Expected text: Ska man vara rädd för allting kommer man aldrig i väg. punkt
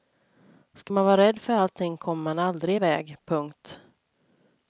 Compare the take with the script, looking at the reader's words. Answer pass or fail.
pass